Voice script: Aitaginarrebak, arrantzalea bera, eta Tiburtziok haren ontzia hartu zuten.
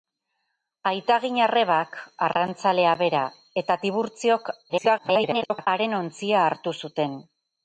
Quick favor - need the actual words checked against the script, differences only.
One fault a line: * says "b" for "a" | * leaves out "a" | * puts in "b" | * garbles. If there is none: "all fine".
* garbles